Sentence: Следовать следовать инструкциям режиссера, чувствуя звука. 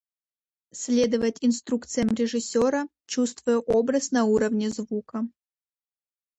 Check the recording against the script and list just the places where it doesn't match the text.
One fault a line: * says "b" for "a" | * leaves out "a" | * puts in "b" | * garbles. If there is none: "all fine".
* leaves out "следовать"
* puts in "образ на уровне"